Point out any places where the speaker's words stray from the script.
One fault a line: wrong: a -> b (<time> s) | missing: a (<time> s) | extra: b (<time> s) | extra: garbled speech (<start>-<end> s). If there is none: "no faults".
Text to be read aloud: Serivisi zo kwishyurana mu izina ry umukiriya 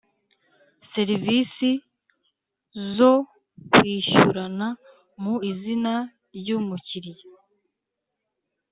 no faults